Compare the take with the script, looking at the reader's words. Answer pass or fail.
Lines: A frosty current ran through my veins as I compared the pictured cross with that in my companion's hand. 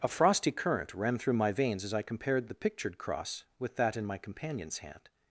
pass